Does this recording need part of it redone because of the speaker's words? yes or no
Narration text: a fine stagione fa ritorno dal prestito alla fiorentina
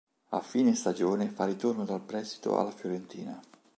no